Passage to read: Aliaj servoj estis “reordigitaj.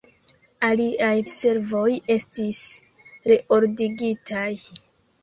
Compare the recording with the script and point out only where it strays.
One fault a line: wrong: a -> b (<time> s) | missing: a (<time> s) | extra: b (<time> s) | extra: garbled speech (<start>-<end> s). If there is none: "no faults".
no faults